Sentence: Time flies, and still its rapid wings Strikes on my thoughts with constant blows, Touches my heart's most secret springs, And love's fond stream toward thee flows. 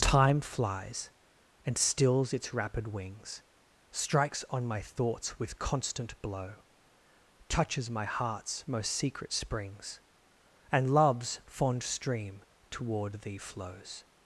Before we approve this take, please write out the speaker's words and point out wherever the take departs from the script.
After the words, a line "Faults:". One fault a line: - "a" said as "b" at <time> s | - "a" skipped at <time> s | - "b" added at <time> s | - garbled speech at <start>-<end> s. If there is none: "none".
Time flies, and stills its rapid wings Strikes on my thoughts with constant blow, Touches my heart's most secret springs, And love's fond stream toward thee flows.
Faults:
- "still" said as "stills" at 1.8 s
- "blows" said as "blow" at 6.2 s